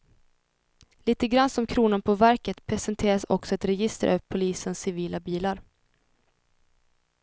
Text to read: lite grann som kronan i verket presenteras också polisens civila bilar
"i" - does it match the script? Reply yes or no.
no